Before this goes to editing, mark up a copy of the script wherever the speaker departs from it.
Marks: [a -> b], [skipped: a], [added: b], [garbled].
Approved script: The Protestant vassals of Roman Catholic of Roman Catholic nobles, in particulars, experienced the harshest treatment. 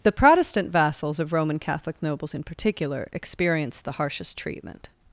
The Protestant vassals of Roman Catholic [skipped: of Roman Catholic] nobles, in [particulars, -> particular] experienced the harshest treatment.